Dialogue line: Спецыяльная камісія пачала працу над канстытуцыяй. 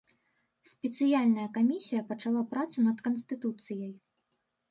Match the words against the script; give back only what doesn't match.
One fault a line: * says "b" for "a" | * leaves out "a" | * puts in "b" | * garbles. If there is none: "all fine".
all fine